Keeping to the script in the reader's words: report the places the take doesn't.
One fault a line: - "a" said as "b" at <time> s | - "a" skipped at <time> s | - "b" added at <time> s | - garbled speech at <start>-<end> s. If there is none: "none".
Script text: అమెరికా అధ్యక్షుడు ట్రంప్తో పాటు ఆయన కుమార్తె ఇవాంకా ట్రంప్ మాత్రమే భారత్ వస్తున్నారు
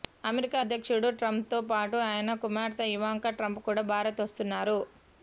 - "మాత్రమే" said as "కూడా" at 3.7 s